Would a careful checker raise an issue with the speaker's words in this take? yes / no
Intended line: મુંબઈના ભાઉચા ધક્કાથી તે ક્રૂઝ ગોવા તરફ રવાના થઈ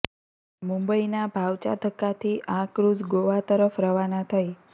yes